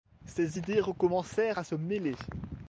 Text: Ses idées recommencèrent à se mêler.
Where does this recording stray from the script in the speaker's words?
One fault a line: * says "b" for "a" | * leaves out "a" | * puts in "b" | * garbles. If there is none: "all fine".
all fine